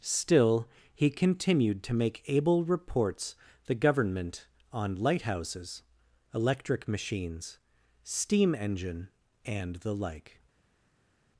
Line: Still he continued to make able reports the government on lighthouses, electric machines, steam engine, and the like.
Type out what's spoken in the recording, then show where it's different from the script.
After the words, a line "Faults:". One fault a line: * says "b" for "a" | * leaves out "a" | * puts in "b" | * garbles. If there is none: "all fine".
Still he continued to make able reports the government on lighthouses, electric machines, steam engine, and the like.
Faults:
all fine